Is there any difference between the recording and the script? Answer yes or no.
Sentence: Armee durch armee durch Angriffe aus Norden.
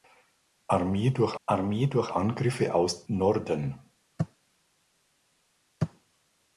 no